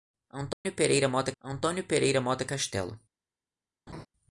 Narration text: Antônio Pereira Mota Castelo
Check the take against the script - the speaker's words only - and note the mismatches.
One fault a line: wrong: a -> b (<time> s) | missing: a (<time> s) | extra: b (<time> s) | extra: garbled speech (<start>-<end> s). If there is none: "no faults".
extra: antônio Pereira Mota (1.4 s)